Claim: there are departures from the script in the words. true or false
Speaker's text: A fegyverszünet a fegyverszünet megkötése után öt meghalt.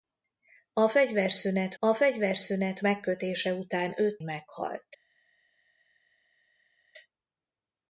false